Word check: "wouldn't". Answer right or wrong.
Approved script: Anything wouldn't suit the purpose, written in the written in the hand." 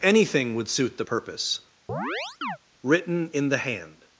wrong